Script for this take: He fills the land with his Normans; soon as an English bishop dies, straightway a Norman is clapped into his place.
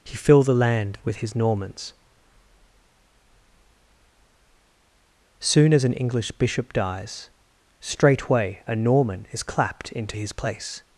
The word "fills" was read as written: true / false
false